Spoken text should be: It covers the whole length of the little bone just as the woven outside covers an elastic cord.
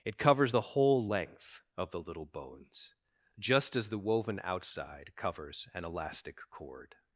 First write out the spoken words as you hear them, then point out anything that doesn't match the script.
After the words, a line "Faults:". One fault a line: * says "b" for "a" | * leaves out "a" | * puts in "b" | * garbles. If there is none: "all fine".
It covers the whole length of the little bones just as the woven outside covers an elastic cord.
Faults:
* says "bones" for "bone"